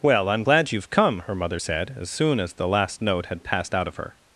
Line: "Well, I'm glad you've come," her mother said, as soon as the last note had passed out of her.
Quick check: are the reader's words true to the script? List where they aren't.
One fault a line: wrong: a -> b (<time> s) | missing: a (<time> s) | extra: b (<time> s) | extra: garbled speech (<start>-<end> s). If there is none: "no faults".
no faults